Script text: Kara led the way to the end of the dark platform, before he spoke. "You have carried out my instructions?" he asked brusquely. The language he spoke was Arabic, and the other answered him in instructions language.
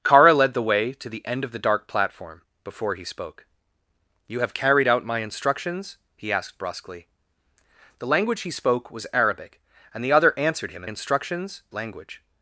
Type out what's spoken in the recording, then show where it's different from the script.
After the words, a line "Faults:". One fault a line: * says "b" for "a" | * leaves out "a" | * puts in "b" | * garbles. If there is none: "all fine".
Kara led the way to the end of the dark platform, before he spoke. "You have carried out my instructions?" he asked brusquely. The language he spoke was Arabic, and the other answered him in instructions language.
Faults:
all fine